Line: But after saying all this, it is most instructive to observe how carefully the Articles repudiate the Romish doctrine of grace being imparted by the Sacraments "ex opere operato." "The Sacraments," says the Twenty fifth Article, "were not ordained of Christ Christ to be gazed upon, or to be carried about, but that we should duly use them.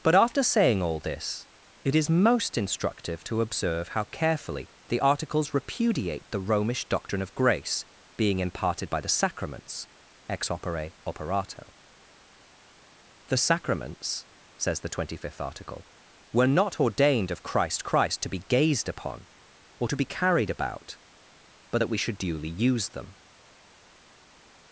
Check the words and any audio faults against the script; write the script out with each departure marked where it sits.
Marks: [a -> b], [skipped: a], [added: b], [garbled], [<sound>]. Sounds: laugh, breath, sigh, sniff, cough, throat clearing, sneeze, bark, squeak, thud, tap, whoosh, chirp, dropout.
But after saying all this, it is most instructive to observe how carefully the Articles repudiate the Romish doctrine of grace being imparted by the Sacraments "ex opere operato." "The Sacraments," says the Twenty fifth Article, "were not ordained of Christ Christ to be gazed upon, or to be carried about, but that we should duly use them.